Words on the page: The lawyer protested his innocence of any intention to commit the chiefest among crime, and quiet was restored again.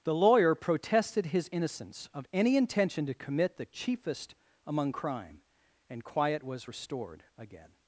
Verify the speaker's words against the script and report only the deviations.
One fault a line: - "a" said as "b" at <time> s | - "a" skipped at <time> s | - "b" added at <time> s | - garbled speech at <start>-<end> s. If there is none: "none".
none